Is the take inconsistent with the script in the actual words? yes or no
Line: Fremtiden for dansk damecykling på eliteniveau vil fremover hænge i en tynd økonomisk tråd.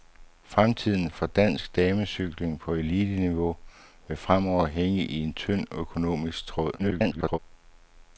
yes